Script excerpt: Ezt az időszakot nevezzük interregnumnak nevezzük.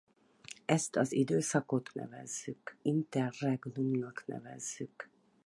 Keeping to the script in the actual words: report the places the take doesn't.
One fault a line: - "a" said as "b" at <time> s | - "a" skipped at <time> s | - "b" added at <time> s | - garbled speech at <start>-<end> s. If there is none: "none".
none